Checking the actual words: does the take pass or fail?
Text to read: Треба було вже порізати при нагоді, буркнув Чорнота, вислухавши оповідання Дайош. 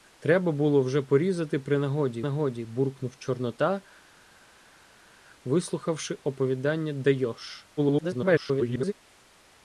fail